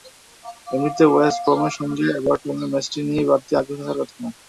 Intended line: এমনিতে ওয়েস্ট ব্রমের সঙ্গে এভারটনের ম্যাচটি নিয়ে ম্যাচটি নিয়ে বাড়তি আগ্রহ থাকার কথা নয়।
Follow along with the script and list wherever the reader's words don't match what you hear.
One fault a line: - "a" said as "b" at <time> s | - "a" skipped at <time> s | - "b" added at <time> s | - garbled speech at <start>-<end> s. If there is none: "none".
- "ম্যাচটি নিয়ে" skipped at 3.2 s